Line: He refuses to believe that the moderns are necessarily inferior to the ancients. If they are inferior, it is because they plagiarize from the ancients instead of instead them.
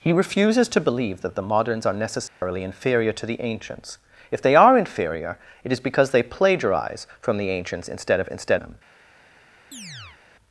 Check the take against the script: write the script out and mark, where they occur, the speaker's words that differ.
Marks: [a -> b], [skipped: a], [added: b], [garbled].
He refuses to believe that the moderns are necessarily inferior to the ancients. If they are inferior, it is because they plagiarize from the ancients instead of instead them.